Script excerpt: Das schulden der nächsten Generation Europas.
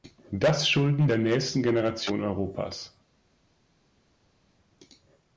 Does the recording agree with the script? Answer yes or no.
yes